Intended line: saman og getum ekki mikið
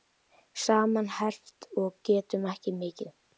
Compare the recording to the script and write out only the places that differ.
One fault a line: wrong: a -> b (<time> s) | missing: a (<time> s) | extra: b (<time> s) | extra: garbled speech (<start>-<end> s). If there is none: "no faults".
extra: herpt (1.2 s)